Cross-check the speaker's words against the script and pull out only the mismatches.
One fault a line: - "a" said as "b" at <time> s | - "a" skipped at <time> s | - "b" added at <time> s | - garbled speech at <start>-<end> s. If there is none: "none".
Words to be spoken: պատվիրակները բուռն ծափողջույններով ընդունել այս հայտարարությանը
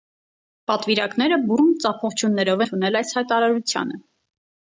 none